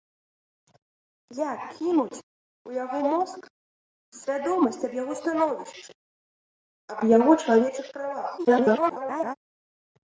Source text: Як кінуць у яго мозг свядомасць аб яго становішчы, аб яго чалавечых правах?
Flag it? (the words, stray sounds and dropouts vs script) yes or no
yes